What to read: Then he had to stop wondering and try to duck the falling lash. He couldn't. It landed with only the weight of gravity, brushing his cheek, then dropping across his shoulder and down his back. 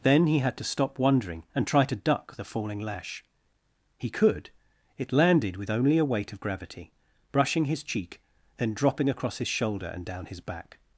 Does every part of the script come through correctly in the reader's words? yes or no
no